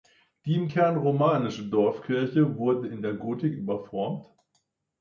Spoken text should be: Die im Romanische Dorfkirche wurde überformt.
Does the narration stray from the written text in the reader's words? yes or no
yes